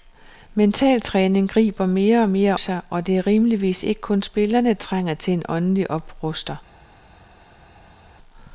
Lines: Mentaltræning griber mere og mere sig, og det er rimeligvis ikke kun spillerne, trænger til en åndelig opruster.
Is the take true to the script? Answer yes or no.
yes